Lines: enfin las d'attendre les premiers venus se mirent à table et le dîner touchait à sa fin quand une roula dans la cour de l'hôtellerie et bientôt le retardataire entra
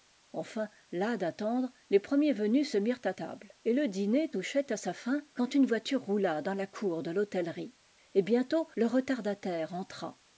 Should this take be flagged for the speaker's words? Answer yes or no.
yes